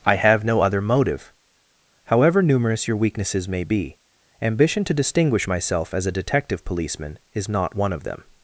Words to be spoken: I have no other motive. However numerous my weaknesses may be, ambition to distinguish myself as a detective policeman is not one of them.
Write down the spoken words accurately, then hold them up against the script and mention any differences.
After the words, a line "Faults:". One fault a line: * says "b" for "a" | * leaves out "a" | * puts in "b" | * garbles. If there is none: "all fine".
I have no other motive. However numerous your weaknesses may be, ambition to distinguish myself as a detective policeman is not one of them.
Faults:
* says "your" for "my"